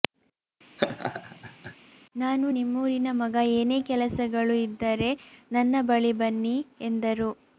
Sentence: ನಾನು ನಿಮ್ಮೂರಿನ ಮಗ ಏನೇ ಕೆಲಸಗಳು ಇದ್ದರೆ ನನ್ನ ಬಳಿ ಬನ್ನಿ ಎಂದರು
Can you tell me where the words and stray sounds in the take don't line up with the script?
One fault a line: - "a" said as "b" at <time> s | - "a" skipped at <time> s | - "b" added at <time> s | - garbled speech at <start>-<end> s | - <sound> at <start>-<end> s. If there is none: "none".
- laugh at 0.8-1.7 s